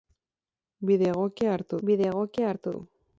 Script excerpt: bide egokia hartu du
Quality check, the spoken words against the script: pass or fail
fail